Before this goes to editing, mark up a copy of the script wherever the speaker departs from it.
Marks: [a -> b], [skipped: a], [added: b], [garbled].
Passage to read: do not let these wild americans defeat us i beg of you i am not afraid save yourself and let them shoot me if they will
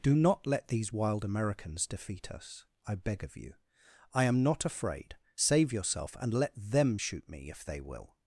do not let these wild americans defeat us i beg of you i am not afraid save yourself and let them shoot me if they will